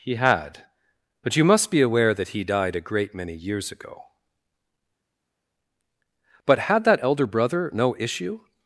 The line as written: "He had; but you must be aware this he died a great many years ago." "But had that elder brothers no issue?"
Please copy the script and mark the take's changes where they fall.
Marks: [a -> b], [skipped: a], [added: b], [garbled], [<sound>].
"He had; but you must be aware [this -> that] he died a great many years ago." "But had that elder [brothers -> brother] no issue?"